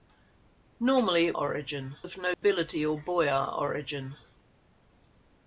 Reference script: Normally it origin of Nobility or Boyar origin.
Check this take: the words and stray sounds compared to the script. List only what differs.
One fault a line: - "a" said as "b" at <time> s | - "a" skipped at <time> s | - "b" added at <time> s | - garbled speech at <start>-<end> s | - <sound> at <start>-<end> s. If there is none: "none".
- dropout at 2.3-2.4 s